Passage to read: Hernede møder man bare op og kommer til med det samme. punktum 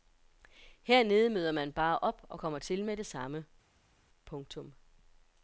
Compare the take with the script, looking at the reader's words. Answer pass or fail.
pass